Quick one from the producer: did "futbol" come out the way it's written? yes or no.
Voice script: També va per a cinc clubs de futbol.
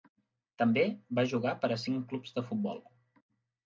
yes